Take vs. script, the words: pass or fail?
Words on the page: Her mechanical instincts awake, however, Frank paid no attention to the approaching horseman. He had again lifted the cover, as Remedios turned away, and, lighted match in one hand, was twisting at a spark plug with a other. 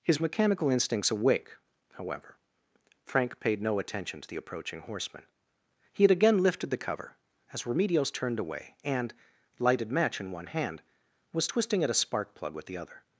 fail